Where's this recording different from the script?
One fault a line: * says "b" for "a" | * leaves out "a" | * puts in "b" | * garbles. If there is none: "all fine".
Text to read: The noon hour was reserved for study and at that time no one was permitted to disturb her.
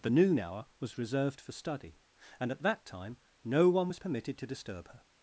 all fine